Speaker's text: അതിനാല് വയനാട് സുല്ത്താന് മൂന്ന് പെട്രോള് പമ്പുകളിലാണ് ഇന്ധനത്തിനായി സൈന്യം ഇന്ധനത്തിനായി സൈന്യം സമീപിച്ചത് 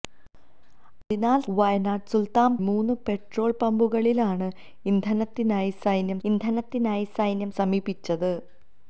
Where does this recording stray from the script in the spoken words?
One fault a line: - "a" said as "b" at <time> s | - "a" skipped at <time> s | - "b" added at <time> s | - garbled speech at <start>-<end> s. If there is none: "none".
none